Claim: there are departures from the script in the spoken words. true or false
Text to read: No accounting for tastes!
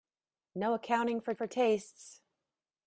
true